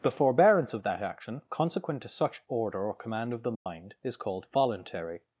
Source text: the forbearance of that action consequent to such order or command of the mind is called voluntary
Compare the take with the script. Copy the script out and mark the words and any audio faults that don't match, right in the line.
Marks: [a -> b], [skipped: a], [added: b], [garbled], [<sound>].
the forbearance of that action consequent to such order or command of the mind [dropout] is called voluntary